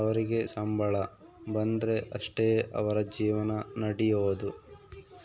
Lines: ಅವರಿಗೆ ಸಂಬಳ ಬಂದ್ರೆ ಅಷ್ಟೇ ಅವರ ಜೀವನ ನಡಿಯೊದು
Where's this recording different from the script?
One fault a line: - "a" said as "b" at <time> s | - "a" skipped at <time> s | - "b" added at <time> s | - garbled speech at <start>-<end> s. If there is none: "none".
none